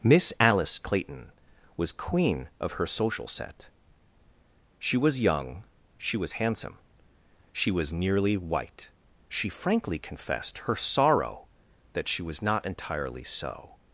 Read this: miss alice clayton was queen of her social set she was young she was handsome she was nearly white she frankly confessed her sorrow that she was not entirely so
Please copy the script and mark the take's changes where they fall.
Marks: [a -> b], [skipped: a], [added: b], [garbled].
miss alice clayton was queen of her social set she was young she was handsome she was nearly white she frankly confessed her sorrow that she was not entirely so